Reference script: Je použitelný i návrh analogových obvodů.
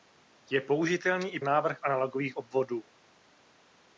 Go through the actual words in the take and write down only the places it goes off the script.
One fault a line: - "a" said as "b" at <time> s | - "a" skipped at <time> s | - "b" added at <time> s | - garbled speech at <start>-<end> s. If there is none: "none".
none